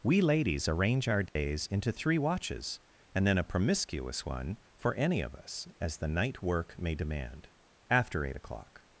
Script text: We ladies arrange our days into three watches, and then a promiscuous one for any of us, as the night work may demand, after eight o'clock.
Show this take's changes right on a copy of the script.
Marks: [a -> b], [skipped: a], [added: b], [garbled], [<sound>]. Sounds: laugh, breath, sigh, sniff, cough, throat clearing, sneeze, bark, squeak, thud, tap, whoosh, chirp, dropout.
We ladies arrange our days [dropout] into three watches, and then a promiscuous one for any of us, as the night work may demand, after eight o'clock.